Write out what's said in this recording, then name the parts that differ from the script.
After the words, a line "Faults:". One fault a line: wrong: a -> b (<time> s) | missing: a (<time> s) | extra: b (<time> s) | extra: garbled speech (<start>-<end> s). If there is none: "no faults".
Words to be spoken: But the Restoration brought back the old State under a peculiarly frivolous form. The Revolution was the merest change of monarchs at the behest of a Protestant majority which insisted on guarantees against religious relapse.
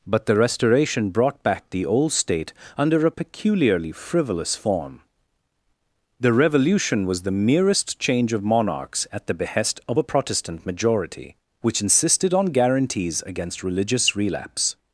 But the Restoration brought back the old State under a peculiarly frivolous form. The Revolution was the merest change of monarchs at the behest of a Protestant majority which insisted on guarantees against religious relapse.
Faults:
no faults